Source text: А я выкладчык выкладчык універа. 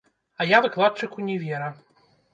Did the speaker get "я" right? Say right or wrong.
right